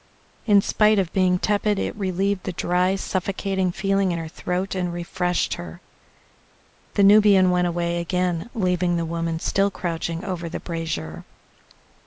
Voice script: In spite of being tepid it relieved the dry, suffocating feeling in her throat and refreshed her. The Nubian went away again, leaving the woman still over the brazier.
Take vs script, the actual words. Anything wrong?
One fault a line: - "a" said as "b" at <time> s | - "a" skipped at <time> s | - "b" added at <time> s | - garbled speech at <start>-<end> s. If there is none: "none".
- "crouching" added at 9.7 s